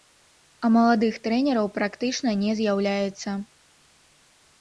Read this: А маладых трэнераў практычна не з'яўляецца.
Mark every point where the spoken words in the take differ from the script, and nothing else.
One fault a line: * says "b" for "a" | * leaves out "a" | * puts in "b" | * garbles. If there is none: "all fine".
all fine